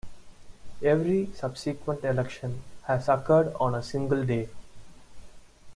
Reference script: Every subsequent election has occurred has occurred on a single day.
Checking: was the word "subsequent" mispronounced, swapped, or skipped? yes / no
no